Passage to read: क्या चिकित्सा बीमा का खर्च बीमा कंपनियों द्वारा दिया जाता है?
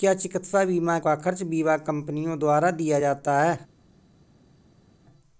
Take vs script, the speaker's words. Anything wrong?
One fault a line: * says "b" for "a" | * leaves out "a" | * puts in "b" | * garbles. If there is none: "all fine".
all fine